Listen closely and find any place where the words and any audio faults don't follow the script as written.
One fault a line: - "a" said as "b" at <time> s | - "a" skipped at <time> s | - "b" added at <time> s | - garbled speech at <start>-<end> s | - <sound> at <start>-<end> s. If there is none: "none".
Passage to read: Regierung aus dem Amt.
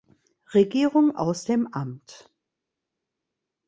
none